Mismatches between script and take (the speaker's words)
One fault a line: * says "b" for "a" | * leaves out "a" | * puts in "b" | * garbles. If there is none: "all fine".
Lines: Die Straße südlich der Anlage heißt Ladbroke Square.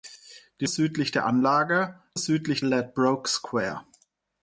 * leaves out "Straße"
* says "südlich" for "heißt"